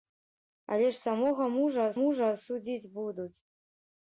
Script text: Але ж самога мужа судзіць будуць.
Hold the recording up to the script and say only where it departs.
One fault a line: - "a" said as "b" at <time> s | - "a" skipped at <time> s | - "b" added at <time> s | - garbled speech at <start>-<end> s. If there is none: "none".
- "мужа" added at 2.0 s